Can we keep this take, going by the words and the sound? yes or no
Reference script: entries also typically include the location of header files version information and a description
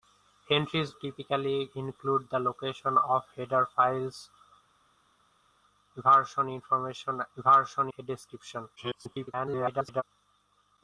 no